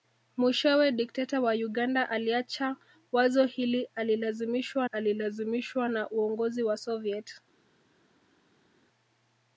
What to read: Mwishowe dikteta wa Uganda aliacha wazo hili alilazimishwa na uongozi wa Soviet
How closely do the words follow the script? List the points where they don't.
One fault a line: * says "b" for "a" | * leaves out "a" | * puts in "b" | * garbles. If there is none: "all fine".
* puts in "alilazimishwa"